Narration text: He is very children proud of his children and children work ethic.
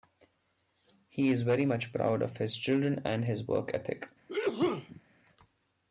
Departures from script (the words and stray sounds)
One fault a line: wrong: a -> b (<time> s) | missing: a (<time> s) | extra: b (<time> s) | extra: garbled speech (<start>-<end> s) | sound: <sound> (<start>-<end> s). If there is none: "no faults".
wrong: children -> much (1.6 s)
wrong: children -> his (3.2 s)
sound: sneeze (4.3-5.0 s)